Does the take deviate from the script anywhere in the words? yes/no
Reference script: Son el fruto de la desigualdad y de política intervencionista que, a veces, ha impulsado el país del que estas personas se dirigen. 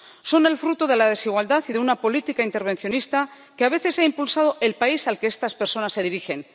yes